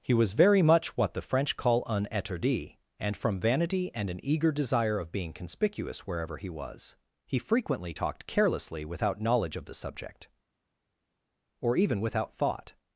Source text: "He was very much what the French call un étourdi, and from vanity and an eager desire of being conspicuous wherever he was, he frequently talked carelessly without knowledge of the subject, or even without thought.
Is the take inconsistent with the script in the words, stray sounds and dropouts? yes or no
no